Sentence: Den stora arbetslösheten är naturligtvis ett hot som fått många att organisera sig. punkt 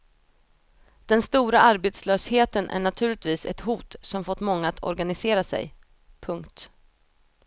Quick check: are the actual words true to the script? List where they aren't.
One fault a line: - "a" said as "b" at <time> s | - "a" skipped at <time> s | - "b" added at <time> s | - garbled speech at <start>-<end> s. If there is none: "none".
none